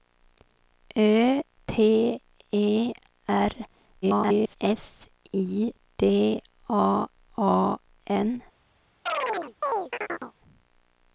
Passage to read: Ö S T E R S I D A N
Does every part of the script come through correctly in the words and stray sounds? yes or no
no